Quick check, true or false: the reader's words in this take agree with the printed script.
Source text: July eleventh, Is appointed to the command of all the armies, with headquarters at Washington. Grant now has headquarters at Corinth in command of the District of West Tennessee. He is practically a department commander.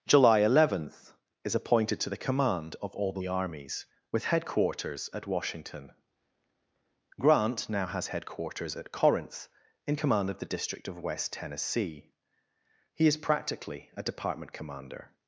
true